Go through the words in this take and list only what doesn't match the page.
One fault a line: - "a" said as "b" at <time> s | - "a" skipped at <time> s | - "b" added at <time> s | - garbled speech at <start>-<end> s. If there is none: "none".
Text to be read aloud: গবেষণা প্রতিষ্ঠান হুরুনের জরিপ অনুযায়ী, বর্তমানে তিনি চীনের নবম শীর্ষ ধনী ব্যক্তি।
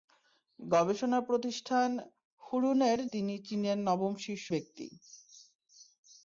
- "জরিপ অনুযায়ী বর্তমানে" skipped at 3.0 s
- "ধনী" skipped at 4.5 s